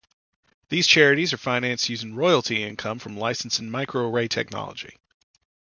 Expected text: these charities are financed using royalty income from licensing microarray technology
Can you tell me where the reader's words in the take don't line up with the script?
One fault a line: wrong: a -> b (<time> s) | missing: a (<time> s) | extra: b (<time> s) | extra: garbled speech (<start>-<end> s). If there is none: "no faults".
no faults